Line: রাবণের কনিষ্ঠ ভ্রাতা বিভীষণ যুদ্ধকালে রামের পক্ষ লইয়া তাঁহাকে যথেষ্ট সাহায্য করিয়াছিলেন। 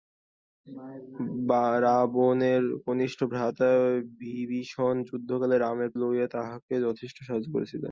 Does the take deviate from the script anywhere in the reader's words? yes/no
yes